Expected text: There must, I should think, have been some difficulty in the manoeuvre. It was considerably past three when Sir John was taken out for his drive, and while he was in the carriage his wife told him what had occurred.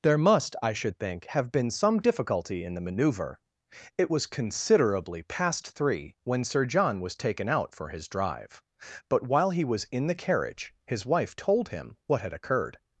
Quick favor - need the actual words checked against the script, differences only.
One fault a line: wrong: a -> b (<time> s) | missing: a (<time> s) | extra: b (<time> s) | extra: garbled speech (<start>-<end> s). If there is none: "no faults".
wrong: and -> but (9.1 s)